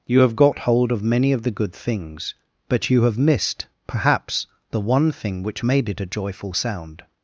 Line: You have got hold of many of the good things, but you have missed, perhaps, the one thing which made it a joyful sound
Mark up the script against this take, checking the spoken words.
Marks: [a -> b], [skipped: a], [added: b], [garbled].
You have got hold of many of the good things, but you have missed, perhaps, the one thing which made it a joyful sound